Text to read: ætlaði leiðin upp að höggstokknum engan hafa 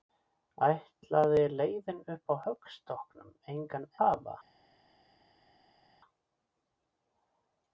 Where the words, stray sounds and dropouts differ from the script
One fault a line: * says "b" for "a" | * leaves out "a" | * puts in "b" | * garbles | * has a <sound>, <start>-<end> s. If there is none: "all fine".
all fine